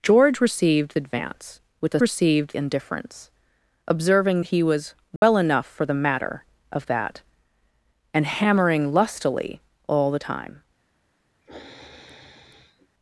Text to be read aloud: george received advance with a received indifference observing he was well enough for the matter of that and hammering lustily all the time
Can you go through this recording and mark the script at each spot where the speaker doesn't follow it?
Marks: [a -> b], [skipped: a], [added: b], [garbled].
george received advance with a received indifference observing he was well enough for the matter of that and hammering lustily all the time